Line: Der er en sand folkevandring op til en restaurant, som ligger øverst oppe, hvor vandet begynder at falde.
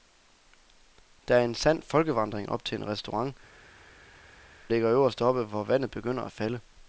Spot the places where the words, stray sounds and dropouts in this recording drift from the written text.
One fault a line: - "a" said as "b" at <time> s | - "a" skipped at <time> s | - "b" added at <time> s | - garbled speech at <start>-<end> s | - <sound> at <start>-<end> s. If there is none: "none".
- "som" skipped at 3.4 s